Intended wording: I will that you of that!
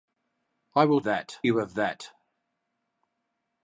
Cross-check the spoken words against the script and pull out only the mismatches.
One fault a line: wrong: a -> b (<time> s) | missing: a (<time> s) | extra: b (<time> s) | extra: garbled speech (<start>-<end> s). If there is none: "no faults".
no faults